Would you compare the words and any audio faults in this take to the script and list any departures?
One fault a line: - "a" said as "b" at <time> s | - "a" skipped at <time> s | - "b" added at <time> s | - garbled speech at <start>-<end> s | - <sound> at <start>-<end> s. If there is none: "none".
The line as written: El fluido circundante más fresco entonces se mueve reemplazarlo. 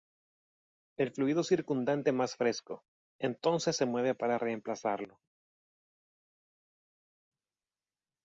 - "para" added at 4.1 s